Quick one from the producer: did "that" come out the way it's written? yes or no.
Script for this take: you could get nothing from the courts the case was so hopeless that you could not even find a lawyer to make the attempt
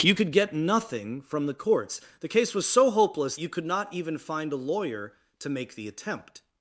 no